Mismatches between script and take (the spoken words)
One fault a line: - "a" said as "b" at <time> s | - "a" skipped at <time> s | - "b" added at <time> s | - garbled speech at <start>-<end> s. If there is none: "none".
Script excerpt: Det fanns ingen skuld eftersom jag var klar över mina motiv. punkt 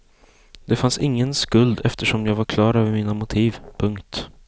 none